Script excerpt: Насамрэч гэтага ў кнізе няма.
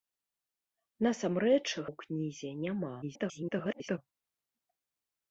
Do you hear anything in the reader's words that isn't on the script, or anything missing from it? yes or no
yes